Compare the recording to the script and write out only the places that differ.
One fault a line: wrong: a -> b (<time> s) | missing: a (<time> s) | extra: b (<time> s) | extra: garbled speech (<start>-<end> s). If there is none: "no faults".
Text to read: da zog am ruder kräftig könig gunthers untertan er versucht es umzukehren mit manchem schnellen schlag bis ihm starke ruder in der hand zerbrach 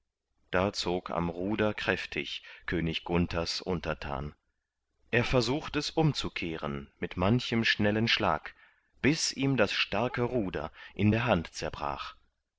extra: das (9.6 s)